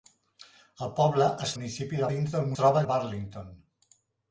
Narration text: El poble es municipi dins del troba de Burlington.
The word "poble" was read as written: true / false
true